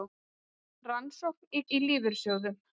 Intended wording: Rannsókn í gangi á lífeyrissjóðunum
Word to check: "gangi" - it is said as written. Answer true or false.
false